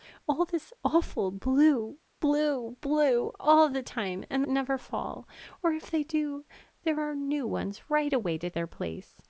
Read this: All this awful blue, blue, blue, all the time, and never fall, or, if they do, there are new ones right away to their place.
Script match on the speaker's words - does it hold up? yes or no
yes